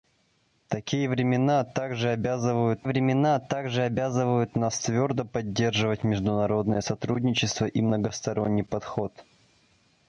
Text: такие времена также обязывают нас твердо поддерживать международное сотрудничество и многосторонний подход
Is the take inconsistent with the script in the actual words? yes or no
yes